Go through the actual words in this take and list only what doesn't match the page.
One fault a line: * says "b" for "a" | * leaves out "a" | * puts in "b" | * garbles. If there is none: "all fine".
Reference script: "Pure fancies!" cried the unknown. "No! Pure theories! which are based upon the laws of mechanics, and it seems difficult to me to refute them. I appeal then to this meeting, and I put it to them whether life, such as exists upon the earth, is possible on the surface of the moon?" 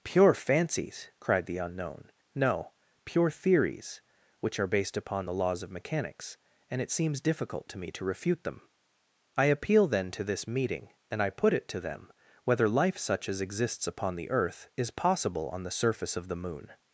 all fine